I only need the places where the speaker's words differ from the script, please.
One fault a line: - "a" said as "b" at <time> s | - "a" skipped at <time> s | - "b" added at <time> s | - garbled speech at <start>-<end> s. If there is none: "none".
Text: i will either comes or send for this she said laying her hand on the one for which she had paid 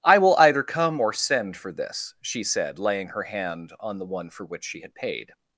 - "comes" said as "come" at 0.6 s